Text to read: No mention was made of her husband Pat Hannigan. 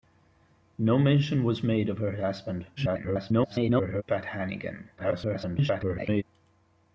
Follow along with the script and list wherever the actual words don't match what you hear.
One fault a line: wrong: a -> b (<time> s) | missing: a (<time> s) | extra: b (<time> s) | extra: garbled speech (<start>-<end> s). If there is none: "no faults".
extra: garbled speech (2.8-4.0 s)
extra: garbled speech (5.0-6.2 s)